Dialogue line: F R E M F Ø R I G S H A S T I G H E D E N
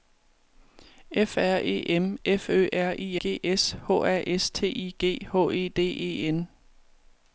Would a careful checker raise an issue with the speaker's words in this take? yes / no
no